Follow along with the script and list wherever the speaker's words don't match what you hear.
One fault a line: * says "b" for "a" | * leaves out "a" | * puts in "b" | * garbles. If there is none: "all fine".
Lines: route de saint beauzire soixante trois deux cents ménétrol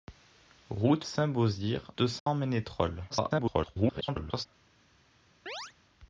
* leaves out "de"
* leaves out "soixante trois"
* garbles